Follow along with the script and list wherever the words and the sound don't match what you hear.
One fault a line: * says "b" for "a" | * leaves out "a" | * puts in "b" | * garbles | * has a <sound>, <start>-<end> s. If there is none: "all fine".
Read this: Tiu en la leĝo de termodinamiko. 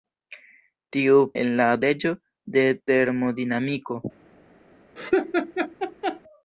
* has a laugh, 5.0-6.2 s